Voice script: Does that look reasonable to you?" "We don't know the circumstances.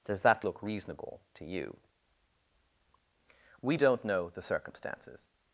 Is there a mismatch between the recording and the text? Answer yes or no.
no